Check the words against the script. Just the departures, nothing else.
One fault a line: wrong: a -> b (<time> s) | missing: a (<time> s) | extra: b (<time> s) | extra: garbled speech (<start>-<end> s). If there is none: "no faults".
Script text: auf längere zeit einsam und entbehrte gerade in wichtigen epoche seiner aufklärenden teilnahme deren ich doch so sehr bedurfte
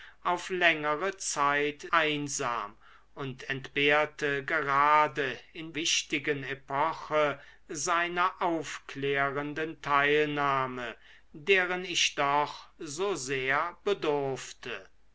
no faults